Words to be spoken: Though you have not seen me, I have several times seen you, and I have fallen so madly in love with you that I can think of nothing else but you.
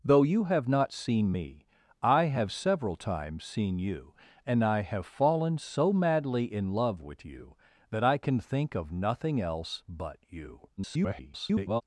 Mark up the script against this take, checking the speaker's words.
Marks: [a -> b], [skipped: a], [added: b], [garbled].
Though you have not seen me, I have several times seen you, and I have fallen so madly in love with you that I can think of nothing else but you. [garbled]